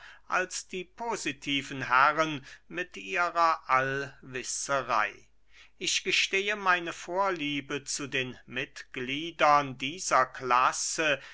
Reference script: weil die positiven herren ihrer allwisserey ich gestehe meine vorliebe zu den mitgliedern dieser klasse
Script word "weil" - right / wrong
wrong